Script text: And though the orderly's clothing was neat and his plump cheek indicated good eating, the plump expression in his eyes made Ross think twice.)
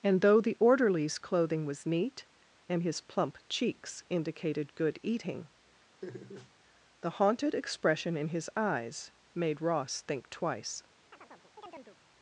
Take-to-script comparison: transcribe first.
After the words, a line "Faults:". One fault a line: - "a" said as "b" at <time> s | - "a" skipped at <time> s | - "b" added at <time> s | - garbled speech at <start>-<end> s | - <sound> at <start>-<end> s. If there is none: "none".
And though the orderly's clothing was neat and his plump cheeks indicated good eating, the haunted expression in his eyes made Ross think twice.)
Faults:
- "cheek" said as "cheeks" at 3.5 s
- laugh at 6.0-6.5 s
- "plump" said as "haunted" at 7.1 s
- chirp at 11.1-12.0 s